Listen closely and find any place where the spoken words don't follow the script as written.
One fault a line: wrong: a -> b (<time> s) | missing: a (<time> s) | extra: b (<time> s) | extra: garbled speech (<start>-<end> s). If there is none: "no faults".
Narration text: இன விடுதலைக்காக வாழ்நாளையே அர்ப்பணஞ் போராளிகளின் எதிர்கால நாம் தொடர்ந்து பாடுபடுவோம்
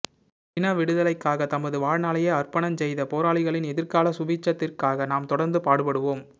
extra: தமது (1.5 s)
extra: செய்த (2.8 s)
extra: சுபீட்சத்திற்காக (4.2 s)